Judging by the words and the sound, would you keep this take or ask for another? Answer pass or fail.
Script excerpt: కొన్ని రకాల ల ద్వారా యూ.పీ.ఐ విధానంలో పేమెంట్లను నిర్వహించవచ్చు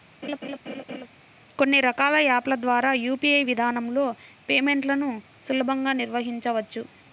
fail